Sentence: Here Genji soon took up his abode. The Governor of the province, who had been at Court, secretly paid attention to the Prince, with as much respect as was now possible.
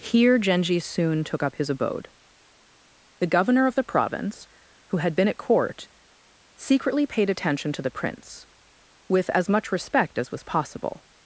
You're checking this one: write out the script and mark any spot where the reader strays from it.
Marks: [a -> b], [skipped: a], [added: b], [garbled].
Here Genji soon took up his abode. The Governor of the province, who had been at Court, secretly paid attention to the Prince, with as much respect as was [skipped: now] possible.